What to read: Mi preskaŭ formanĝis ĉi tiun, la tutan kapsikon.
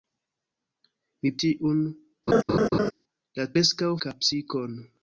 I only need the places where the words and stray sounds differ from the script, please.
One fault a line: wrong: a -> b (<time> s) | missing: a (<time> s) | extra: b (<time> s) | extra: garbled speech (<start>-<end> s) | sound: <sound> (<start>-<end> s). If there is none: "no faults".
missing: preskaŭ formanĝis ĉi (1.3 s)
sound: laugh (2.3-2.9 s)
wrong: tutan -> preskaŭ (3.5 s)